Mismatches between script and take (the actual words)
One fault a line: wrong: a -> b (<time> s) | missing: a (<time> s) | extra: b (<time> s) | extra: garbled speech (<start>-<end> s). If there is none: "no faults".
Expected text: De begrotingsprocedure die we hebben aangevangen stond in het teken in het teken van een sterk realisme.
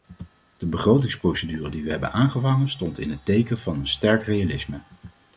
missing: in het teken (3.6 s)